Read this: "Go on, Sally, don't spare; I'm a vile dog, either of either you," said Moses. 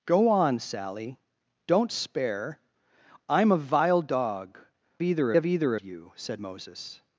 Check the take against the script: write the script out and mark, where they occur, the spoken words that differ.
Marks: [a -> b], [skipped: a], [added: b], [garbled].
"Go on, Sally, don't spare; I'm a vile dog, either of either you," said Moses.